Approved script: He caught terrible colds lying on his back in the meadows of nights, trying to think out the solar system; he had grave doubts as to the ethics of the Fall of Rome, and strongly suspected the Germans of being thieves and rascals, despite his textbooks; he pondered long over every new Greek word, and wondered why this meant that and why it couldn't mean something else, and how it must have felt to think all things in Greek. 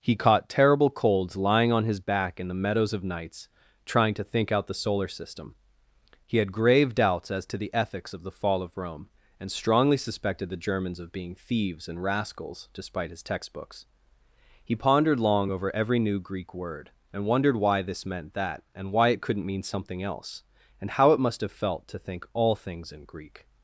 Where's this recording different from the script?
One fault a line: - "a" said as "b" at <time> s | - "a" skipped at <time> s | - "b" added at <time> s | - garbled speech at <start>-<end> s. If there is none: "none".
none